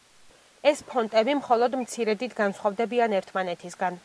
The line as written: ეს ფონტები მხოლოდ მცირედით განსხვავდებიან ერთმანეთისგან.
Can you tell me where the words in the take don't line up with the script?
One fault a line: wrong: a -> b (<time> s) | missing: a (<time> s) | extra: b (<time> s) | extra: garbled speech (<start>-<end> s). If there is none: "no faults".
no faults